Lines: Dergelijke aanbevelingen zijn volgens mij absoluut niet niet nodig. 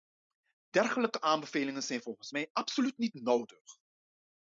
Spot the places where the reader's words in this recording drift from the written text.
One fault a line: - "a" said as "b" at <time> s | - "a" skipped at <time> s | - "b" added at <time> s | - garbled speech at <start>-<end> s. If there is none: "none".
- "niet" skipped at 3.1 s